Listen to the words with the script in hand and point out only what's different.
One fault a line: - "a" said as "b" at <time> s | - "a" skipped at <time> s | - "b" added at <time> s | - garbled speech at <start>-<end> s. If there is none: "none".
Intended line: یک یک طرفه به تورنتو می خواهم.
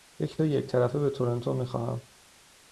none